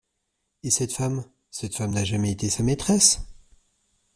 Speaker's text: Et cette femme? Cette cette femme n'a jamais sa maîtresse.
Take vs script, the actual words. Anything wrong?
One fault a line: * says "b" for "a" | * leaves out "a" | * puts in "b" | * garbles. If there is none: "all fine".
* leaves out "cette"
* puts in "été"